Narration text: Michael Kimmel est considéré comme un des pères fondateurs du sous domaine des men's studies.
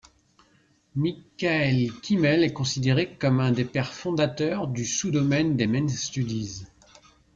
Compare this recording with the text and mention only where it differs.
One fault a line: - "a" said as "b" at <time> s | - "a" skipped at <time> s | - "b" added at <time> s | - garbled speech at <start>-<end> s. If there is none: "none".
none